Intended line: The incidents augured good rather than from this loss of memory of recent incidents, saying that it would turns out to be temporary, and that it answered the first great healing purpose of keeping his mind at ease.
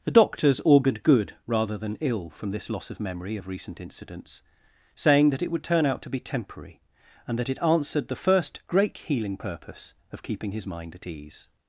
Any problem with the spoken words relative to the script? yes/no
yes